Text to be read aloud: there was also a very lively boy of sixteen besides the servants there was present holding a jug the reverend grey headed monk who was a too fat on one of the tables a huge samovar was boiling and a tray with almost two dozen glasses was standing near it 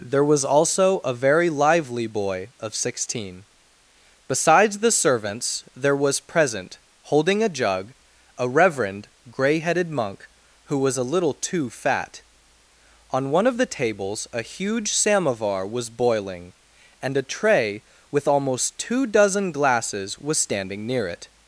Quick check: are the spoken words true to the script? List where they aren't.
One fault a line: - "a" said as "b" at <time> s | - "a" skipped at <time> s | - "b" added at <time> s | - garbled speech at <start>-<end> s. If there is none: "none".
- "the" said as "a" at 8.3 s
- "little" added at 11.1 s